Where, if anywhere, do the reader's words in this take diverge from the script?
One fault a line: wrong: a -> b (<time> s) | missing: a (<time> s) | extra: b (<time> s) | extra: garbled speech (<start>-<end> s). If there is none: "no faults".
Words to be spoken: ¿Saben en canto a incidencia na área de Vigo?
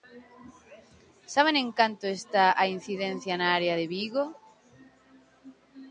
extra: está (2.2 s)